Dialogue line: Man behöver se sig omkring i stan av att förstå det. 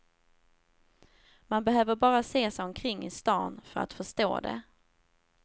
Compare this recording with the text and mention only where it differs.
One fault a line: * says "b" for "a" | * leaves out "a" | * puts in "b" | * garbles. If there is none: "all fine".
* puts in "bara"
* says "för" for "av"